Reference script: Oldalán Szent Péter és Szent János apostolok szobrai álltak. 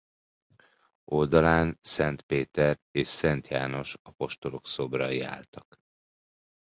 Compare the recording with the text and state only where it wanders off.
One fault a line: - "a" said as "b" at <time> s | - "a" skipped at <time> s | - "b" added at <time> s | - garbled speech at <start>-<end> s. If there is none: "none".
none